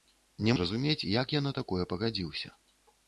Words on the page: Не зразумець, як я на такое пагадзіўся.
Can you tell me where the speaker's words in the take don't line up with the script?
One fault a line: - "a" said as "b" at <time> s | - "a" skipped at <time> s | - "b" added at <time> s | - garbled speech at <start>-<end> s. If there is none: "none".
none